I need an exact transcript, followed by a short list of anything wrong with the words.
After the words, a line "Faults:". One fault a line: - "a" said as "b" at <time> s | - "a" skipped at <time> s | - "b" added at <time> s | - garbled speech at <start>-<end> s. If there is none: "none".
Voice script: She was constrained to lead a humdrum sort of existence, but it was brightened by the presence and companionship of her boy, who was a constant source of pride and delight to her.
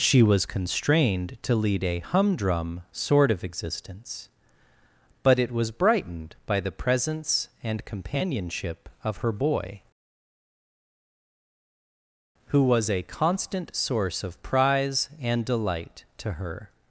She was constrained to lead a humdrum sort of existence, but it was brightened by the presence and companionship of her boy, who was a constant source of prize and delight to her.
Faults:
- "pride" said as "prize" at 14.4 s